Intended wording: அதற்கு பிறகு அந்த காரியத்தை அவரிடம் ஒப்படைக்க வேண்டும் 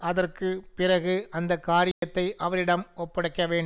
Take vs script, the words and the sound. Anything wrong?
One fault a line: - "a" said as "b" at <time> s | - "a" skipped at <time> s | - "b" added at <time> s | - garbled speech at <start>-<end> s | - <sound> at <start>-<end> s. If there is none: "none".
- dropout at 1.9-2.0 s